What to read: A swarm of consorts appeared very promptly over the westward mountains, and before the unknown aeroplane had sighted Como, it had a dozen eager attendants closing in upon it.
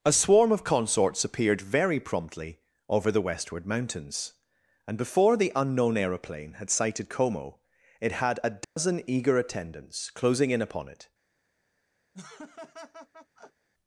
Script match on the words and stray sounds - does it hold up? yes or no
no